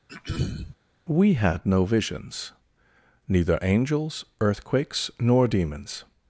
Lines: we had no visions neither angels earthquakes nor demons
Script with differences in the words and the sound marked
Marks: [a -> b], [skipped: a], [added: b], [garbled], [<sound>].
[throat clearing] we had no visions neither angels earthquakes nor demons